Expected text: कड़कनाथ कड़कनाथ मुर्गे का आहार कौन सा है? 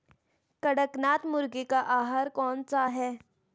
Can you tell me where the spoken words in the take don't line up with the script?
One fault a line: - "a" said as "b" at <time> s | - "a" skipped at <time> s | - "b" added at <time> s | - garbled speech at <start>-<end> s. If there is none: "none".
- "कड़कनाथ" skipped at 1.2 s